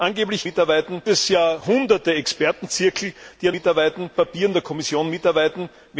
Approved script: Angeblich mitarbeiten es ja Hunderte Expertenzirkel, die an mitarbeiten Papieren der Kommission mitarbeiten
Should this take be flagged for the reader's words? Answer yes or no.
no